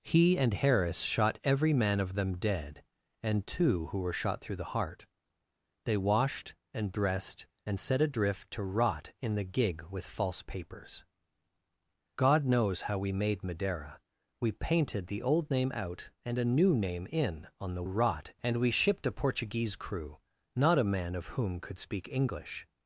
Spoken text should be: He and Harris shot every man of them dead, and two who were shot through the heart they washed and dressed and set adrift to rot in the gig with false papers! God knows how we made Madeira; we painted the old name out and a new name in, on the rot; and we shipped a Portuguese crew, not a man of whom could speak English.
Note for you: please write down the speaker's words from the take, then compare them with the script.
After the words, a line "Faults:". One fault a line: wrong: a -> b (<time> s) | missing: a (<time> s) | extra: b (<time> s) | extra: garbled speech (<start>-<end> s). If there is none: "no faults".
He and Harris shot every man of them dead, and two who were shot through the heart they washed and dressed and set adrift to rot in the gig with false papers! God knows how we made Madeira; we painted the old name out and a new name in, on the rot; and we shipped a Portuguese crew, not a man of whom could speak English.
Faults:
no faults